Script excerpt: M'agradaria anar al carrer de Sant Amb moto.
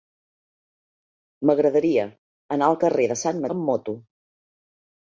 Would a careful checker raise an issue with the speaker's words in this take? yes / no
no